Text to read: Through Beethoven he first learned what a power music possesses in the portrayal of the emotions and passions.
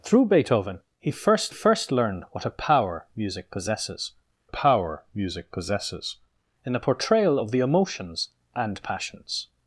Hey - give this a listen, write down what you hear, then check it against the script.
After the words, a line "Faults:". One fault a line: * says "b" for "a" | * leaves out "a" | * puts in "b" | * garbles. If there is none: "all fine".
Through Beethoven he first first learned what a power music possesses power music possesses in the portrayal of the emotions and passions.
Faults:
* puts in "first"
* puts in "power music possesses"